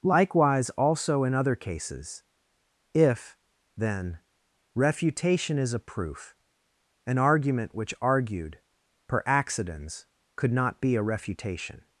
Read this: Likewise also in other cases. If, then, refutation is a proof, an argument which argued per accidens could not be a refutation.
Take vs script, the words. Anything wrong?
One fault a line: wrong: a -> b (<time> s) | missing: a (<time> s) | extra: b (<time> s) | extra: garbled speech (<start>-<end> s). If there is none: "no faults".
no faults